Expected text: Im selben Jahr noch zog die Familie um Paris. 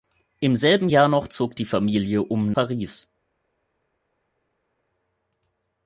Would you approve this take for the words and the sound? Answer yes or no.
yes